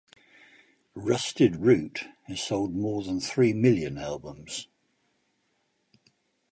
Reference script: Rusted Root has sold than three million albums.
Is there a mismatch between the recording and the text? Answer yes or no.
yes